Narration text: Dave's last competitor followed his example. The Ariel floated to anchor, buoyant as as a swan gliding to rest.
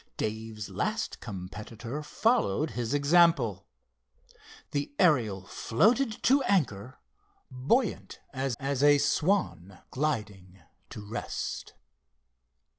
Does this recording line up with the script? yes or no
yes